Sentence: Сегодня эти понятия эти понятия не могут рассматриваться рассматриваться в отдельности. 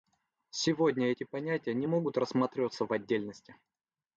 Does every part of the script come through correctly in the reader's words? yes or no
no